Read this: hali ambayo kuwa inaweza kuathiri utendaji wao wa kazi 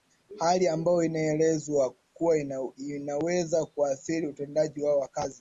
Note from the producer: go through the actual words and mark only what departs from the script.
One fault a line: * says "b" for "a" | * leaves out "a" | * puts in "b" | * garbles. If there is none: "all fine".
* puts in "inaelezwa"